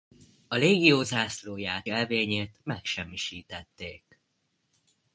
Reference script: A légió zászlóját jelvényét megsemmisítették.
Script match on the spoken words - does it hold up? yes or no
yes